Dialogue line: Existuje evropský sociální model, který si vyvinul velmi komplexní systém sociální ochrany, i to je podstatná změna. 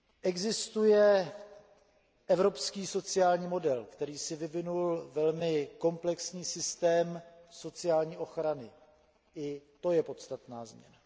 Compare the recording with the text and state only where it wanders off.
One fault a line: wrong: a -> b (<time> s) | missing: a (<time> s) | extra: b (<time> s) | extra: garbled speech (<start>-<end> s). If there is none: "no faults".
no faults